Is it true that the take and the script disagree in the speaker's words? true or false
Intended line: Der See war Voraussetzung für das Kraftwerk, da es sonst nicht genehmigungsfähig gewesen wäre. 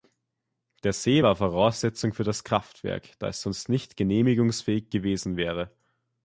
false